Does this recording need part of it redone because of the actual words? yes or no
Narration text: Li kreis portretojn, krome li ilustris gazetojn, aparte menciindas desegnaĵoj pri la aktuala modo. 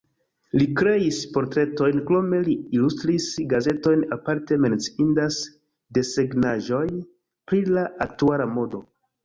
no